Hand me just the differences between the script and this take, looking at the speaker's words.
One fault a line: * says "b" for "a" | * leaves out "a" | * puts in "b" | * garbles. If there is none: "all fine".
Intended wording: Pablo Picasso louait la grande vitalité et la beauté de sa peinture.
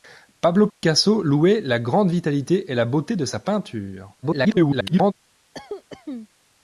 * garbles